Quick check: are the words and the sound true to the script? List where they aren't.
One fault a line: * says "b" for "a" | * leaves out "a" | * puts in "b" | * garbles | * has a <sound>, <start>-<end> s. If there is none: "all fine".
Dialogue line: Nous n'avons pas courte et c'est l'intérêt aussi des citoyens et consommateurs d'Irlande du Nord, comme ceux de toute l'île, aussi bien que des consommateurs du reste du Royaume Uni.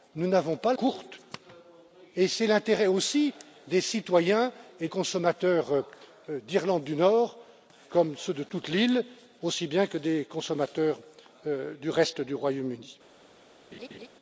* has a laugh, 13.7-14.1 s